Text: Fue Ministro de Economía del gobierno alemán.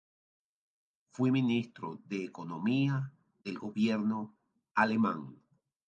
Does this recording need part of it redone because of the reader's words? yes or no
no